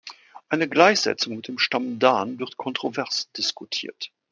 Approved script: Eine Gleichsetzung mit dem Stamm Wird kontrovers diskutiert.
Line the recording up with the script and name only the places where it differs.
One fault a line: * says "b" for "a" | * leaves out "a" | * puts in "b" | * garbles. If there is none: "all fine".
* puts in "Dan"